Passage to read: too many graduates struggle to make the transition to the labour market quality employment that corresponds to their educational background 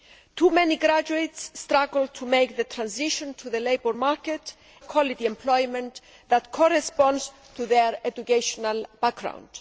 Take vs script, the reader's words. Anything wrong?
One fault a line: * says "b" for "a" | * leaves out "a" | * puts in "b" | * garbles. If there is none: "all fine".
all fine